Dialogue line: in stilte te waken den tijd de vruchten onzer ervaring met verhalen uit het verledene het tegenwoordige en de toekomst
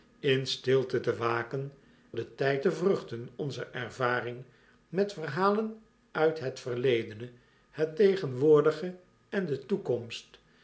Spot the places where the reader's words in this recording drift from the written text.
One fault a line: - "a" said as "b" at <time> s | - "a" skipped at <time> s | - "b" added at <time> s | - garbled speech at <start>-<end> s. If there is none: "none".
none